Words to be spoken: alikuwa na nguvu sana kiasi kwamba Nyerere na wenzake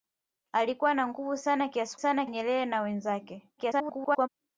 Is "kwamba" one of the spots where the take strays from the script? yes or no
yes